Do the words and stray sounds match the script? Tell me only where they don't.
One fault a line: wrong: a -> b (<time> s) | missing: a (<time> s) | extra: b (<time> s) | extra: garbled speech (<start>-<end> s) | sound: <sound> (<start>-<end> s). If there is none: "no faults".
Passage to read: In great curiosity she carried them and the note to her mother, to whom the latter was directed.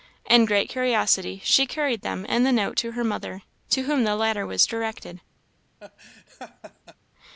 sound: laugh (5.8-7.0 s)